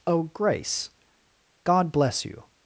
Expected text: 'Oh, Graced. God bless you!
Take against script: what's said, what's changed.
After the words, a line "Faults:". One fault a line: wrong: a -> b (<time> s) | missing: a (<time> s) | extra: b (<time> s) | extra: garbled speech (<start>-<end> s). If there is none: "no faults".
'Oh, Grace. God bless you!
Faults:
wrong: Graced -> Grace (0.2 s)